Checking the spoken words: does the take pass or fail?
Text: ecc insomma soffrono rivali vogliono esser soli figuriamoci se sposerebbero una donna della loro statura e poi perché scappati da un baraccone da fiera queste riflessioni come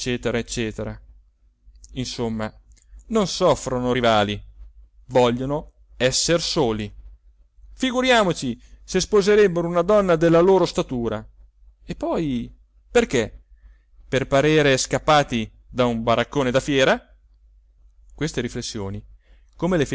fail